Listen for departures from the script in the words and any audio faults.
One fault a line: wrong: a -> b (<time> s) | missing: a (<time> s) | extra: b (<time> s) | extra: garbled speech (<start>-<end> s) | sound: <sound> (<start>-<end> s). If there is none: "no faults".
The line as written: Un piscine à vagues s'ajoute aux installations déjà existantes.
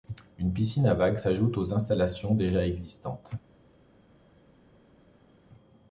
wrong: Un -> Une (0.4 s)